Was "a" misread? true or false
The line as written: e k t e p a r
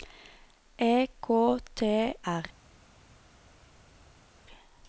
true